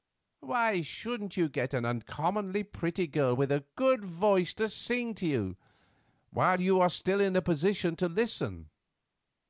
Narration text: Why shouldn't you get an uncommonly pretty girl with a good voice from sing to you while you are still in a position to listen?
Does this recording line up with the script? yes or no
no